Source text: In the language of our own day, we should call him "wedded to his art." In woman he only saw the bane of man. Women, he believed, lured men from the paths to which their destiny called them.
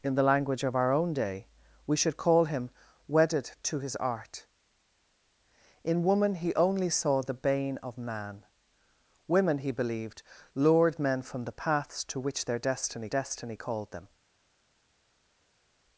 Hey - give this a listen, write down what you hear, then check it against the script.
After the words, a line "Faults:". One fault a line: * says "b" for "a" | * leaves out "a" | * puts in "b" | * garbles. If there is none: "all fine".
In the language of our own day, we should call him "wedded to his art." In woman he only saw the bane of man. Women, he believed, lured men from the paths to which their destiny destiny called them.
Faults:
* puts in "destiny"